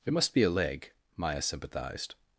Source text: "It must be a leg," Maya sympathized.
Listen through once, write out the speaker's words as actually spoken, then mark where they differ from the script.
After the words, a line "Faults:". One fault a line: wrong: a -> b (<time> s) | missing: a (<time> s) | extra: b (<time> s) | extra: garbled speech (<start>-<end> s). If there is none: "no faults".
"It must be a leg," Maya sympathized.
Faults:
no faults